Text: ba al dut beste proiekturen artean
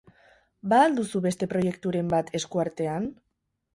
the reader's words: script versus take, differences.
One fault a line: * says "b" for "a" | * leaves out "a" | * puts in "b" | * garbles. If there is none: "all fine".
* says "duzu" for "dut"
* puts in "bat esku"